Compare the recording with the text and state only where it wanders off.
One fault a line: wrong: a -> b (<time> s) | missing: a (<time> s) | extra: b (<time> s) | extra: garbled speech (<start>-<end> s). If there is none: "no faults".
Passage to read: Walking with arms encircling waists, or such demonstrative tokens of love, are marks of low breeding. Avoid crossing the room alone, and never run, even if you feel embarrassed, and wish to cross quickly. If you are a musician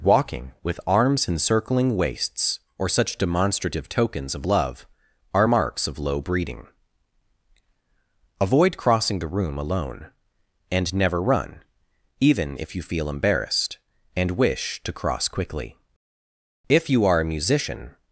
no faults